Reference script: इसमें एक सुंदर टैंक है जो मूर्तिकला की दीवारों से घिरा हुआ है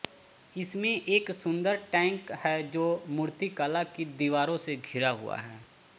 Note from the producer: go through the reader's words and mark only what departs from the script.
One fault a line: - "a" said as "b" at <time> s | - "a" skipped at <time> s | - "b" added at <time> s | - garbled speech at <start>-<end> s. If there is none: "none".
none